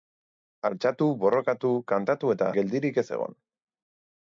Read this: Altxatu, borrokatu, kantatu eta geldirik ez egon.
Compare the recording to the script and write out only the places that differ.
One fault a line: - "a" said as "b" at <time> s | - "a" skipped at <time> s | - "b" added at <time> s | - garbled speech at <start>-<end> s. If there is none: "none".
none